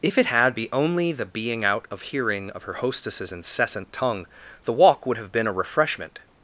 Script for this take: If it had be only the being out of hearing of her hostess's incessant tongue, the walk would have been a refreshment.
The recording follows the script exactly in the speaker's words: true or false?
true